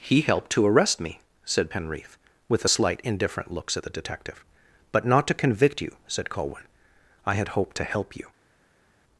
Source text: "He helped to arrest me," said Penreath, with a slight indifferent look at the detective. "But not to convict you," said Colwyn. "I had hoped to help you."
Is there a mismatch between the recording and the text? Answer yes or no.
yes